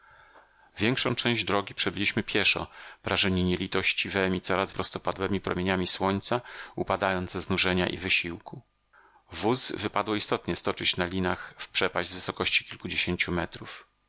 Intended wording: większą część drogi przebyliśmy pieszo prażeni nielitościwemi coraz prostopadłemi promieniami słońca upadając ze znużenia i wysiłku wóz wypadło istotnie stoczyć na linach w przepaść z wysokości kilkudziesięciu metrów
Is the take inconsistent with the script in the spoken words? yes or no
no